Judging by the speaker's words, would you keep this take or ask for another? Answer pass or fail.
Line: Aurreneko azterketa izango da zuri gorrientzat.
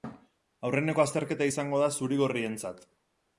pass